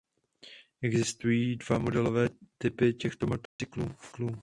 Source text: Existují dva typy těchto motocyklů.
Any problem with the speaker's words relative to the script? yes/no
yes